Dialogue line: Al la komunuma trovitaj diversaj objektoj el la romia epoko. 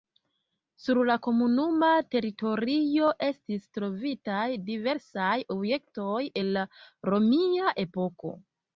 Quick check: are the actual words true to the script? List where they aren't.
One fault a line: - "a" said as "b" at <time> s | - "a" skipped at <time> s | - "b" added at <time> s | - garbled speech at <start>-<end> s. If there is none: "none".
- "Al" said as "Sur" at 0.8 s
- "teritorio estis" added at 2.2 s